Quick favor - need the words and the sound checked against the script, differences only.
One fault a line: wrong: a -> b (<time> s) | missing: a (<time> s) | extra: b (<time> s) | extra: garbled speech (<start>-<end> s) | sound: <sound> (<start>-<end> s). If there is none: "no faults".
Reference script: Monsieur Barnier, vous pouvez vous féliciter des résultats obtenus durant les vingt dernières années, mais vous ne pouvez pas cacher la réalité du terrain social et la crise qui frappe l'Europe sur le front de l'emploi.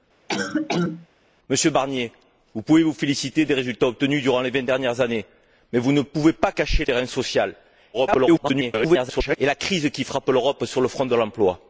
sound: cough (0.3-1.1 s)
missing: la réalité du (6.8 s)
extra: garbled speech (7.9-9.4 s)